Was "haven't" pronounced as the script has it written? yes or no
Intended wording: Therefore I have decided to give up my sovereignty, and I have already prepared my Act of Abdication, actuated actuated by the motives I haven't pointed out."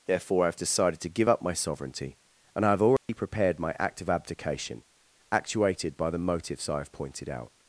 no